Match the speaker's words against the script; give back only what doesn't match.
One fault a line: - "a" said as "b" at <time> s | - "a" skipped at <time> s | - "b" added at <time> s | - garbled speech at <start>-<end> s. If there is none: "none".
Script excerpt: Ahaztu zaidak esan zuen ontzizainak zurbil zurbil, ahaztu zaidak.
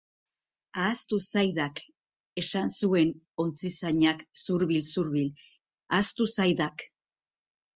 none